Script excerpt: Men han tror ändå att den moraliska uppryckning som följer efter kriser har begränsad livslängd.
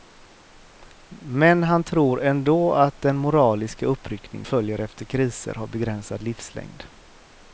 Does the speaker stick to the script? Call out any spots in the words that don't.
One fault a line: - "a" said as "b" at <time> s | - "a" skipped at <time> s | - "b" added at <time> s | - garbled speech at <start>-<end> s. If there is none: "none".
- "som" skipped at 4.5 s